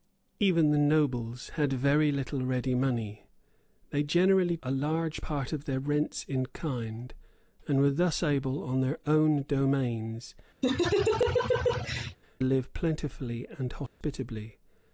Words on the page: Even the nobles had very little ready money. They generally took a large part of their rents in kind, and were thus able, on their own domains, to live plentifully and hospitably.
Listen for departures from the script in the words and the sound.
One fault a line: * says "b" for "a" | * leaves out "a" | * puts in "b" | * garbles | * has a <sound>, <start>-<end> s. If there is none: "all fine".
* leaves out "took"
* leaves out "to"
* has a laugh, 10.6-12.2 s
* has a dropout, 13.9-14.0 s